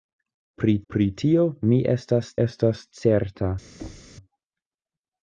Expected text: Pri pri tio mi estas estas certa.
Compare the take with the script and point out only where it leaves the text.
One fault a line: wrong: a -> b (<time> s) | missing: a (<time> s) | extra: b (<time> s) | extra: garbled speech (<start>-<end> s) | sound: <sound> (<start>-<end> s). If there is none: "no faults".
sound: thud (3.8-4.2 s)